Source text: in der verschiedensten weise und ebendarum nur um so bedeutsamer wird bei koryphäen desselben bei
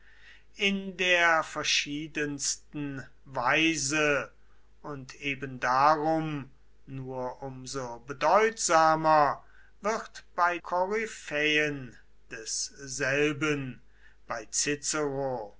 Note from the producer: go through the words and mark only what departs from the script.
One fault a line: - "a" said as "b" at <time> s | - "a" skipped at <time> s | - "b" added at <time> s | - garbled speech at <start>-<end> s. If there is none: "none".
none